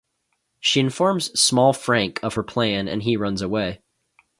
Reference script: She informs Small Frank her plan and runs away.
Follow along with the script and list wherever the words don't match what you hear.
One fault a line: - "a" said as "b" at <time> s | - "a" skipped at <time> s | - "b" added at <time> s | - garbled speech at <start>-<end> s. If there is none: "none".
- "of" added at 2.2 s
- "he" added at 3.0 s